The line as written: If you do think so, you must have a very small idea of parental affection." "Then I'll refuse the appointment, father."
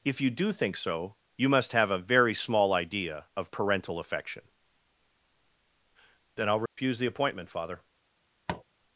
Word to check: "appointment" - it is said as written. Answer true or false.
true